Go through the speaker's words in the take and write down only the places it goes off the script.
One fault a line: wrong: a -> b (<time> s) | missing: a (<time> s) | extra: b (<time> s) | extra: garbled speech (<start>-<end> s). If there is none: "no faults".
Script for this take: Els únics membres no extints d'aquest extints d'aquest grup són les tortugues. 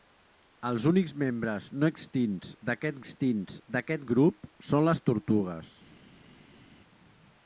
no faults